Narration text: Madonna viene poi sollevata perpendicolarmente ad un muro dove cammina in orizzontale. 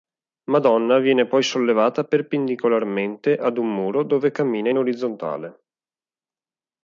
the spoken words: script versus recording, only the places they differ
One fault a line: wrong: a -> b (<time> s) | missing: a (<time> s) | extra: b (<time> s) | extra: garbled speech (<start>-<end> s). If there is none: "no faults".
no faults